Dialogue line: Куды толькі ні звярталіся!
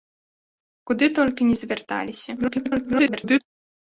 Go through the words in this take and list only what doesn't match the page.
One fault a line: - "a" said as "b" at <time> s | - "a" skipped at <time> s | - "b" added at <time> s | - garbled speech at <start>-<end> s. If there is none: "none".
- garbled speech at 2.4-3.4 s